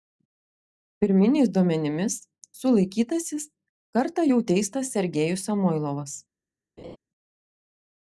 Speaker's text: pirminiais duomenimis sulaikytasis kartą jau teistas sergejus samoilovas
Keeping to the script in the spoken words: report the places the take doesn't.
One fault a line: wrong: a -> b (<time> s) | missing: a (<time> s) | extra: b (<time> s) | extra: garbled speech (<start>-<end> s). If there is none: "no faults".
no faults